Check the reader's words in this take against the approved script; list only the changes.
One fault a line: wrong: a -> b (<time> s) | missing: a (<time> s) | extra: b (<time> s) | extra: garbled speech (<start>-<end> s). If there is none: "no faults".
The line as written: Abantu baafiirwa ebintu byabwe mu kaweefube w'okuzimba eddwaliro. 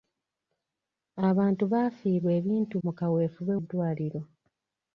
missing: byabwe (2.8 s)
missing: w'okuzimba (3.5 s)